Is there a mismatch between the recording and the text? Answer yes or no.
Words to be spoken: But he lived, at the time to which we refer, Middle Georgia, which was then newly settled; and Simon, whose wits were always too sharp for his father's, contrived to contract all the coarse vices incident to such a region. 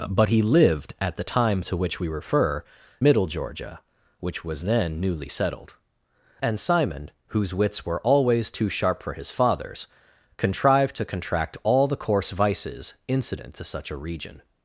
no